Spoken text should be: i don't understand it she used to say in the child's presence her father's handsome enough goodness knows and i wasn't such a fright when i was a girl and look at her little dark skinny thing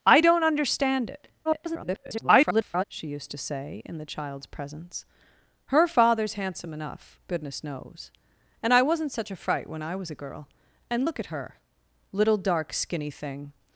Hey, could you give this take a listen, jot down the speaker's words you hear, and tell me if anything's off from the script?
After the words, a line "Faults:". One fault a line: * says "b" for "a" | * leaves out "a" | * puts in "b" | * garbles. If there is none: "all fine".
i don't understand it [garbled] she used to say in the child's presence her father's handsome enough goodness knows and i wasn't such a fright when i was a girl and look at her little dark skinny thing
Faults:
* garbles